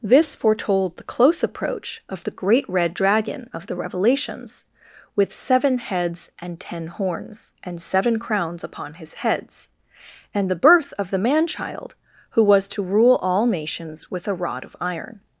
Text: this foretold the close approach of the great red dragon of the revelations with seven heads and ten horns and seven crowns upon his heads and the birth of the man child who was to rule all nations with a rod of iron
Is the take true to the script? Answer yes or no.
yes